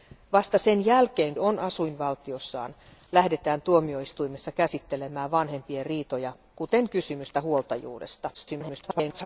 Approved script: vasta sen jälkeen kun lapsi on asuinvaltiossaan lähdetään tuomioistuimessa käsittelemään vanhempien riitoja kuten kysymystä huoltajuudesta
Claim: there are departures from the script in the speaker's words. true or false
true